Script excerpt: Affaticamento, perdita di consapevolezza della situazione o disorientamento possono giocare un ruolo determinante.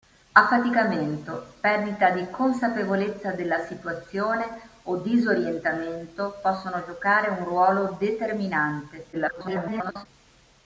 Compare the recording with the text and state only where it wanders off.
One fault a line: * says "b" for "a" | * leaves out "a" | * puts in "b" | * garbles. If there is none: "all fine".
* garbles